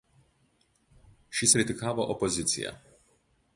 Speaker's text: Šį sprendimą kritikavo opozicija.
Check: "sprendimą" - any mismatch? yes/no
yes